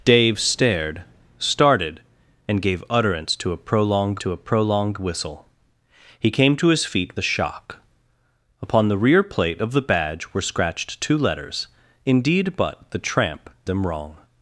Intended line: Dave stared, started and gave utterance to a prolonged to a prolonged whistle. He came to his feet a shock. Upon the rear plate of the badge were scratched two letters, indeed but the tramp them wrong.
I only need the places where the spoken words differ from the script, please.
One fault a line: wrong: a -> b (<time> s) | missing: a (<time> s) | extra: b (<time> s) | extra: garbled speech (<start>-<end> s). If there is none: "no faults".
no faults